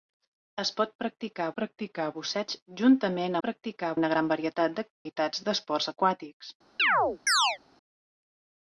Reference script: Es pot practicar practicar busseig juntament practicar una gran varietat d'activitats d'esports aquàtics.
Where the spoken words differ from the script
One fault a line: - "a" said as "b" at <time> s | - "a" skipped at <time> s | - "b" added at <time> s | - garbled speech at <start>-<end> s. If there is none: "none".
none